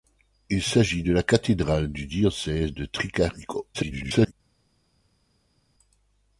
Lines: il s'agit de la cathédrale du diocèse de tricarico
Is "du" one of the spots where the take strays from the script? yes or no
no